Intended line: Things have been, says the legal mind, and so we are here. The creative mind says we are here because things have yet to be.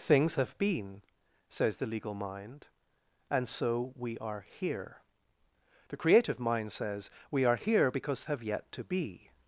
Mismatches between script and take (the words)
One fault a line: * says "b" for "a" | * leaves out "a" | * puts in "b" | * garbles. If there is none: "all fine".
* leaves out "things"